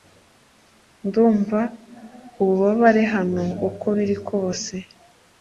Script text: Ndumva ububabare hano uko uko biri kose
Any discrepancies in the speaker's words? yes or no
yes